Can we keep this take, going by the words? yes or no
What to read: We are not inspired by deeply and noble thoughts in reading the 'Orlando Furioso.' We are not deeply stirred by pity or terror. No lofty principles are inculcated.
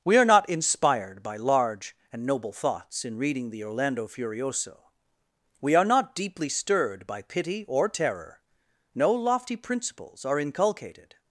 no